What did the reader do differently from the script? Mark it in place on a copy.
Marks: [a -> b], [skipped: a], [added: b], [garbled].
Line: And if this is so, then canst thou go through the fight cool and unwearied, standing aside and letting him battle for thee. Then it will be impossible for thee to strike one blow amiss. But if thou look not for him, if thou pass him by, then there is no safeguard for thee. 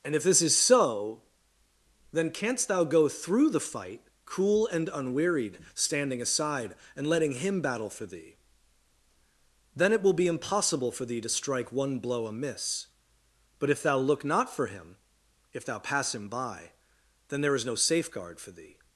And if this is so, then canst thou go through the fight cool and unwearied, standing aside and letting him battle for thee. Then it will be impossible for thee to strike one blow amiss. But if thou look not for him, if thou pass him by, then there is no safeguard for thee.